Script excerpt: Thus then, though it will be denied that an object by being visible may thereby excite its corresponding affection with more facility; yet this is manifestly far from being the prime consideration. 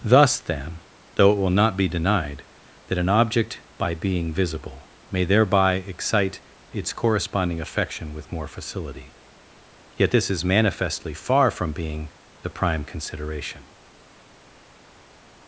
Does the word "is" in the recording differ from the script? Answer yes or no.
no